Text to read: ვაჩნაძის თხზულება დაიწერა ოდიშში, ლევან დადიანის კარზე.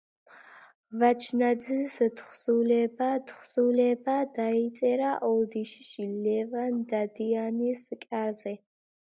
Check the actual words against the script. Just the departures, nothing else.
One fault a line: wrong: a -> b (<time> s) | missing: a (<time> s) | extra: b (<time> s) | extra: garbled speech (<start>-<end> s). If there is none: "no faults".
extra: თხზულება (3.3 s)